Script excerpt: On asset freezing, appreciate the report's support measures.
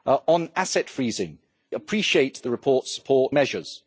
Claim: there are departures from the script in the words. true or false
false